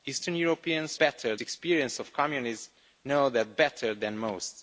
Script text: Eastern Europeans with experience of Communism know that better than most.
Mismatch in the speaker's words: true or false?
true